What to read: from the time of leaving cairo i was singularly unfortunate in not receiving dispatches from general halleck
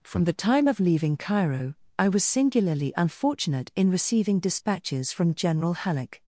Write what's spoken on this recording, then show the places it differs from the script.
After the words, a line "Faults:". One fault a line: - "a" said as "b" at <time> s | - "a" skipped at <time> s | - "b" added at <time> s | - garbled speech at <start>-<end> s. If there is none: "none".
from the time of leaving cairo i was singularly unfortunate in receiving dispatches from general halleck
Faults:
- "not" skipped at 3.9 s